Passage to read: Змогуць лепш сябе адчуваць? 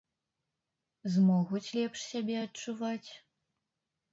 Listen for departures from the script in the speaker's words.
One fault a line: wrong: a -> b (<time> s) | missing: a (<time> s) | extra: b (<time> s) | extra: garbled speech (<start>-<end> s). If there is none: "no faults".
no faults